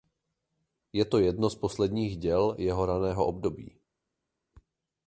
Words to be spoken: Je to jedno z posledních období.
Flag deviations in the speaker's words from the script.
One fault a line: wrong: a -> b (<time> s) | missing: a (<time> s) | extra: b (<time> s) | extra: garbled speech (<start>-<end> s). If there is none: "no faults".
extra: děl jeho raného (2.2 s)